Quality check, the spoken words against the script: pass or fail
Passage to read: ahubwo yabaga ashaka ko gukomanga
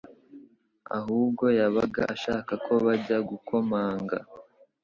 fail